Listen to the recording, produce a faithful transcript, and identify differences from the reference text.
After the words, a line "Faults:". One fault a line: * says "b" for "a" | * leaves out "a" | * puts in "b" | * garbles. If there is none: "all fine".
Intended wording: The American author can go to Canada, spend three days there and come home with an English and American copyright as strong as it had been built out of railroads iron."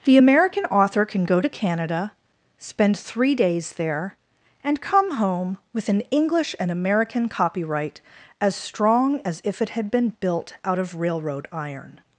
The American author can go to Canada, spend three days there and come home with an English and American copyright as strong as if it had been built out of railroad iron."
Faults:
* puts in "if"
* says "railroad" for "railroads"